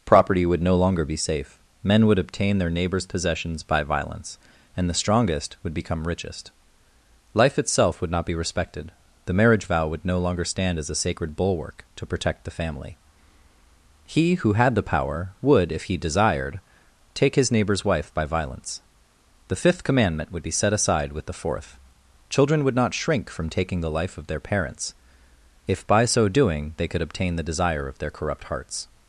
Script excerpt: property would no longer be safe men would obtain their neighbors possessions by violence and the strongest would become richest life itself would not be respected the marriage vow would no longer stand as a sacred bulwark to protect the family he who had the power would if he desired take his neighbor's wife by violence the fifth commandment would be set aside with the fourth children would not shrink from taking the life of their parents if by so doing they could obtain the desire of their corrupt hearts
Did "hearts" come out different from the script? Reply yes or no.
no